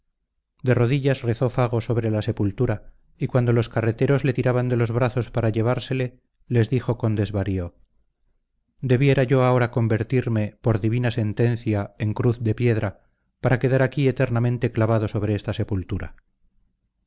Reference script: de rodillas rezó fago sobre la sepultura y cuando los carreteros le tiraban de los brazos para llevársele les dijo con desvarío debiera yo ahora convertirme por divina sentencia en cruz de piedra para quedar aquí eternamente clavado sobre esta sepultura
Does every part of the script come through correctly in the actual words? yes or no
yes